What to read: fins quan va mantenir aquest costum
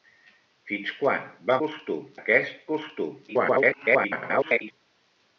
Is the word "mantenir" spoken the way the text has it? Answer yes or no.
no